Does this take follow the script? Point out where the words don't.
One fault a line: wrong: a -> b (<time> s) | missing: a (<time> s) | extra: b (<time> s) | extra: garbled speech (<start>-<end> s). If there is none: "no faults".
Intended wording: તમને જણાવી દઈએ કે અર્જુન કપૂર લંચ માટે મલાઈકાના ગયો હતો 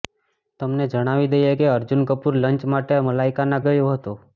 no faults